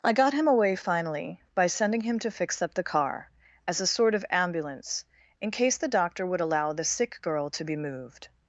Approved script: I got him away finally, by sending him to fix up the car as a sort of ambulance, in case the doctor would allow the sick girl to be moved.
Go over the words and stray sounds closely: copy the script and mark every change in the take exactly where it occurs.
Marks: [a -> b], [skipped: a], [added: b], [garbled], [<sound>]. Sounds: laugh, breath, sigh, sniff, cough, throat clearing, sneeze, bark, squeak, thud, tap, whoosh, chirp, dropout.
I got him away finally, by sending him to fix up the car as a sort of ambulance, in case the doctor would allow the sick girl to be moved.